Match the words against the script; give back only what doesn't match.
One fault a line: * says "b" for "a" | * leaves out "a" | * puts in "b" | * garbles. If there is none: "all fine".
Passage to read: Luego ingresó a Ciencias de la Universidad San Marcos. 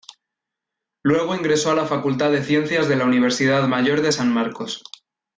* puts in "la Facultad de"
* puts in "Mayor de"